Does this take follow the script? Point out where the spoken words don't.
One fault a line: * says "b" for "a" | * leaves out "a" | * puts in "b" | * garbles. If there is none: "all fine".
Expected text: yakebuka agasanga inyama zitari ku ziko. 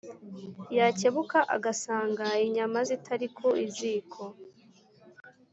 all fine